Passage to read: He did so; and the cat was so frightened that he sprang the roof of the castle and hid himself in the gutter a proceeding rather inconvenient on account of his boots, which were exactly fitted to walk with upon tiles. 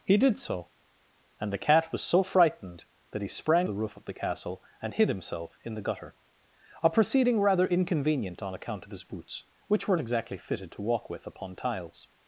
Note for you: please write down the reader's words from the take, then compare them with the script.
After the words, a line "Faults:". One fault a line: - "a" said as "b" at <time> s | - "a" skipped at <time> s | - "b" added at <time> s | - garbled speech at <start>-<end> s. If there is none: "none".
He did so; and the cat was so frightened that he sprang the roof of the castle and hid himself in the gutter a proceeding rather inconvenient on account of his boots, which were exactly fitted to walk with upon tiles.
Faults:
none